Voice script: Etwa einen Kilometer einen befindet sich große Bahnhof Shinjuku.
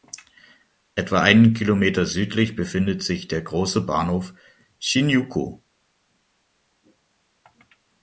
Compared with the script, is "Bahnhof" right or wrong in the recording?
right